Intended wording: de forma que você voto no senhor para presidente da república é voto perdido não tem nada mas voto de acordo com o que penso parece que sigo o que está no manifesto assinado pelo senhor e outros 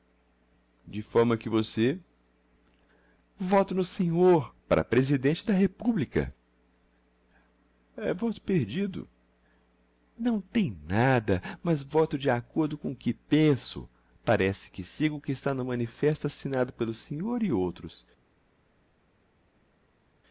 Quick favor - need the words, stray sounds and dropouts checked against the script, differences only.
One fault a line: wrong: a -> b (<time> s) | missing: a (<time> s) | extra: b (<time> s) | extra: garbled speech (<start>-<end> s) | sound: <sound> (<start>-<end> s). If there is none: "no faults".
no faults